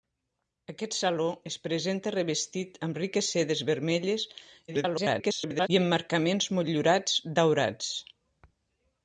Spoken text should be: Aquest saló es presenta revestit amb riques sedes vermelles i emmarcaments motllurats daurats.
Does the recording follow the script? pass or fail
fail